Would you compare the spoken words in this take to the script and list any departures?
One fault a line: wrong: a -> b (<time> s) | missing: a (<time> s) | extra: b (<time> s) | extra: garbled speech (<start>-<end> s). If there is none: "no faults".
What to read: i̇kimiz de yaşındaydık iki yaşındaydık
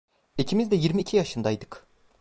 wrong: yaşındaydık -> yirmi (0.8 s)